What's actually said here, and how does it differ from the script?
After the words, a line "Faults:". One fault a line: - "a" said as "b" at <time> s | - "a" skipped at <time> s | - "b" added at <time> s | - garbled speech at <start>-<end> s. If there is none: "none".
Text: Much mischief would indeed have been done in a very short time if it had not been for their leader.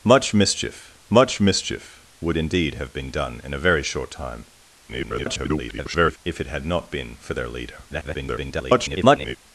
Much mischief much mischief would indeed have been done in a very short time [garbled] if it had not been for their leader. [garbled]
Faults:
- "much mischief" added at 1.1 s
- garbled speech at 4.9-6.2 s
- garbled speech at 7.9-9.4 s